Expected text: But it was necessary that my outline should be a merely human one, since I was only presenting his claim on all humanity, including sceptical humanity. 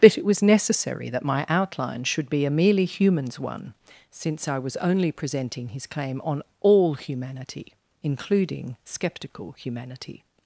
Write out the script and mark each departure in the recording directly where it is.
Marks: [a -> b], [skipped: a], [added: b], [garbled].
But it was necessary that my outline should be a merely [human -> humans] one, since I was only presenting his claim on all humanity, including sceptical humanity.